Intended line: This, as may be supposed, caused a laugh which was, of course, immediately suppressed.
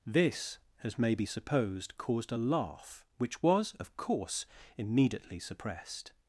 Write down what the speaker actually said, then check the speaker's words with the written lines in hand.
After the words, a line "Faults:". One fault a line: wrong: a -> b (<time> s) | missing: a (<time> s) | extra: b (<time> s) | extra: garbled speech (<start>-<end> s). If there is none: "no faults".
This, as may be supposed, caused a laugh which was, of course, immediately suppressed.
Faults:
no faults